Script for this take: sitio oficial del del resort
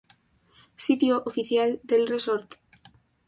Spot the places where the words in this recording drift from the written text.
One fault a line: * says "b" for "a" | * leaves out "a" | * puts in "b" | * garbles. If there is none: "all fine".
* leaves out "del"